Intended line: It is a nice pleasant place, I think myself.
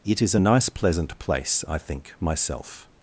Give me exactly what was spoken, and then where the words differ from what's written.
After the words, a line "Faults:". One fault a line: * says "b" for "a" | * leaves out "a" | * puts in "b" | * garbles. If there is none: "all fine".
It is a nice pleasant place, I think myself.
Faults:
all fine